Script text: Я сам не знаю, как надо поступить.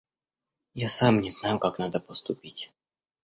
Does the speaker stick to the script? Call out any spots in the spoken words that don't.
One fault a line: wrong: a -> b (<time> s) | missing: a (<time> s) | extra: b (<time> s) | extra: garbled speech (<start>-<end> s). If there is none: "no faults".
no faults